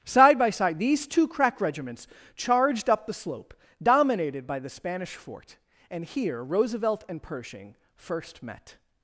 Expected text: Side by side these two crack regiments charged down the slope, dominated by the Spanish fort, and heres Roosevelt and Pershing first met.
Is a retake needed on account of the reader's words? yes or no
yes